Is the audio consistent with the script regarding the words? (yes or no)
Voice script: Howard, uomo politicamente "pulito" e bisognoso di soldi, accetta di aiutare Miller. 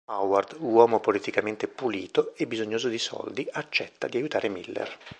yes